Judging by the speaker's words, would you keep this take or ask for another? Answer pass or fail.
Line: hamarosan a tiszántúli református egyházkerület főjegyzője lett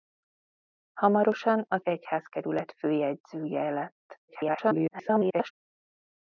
fail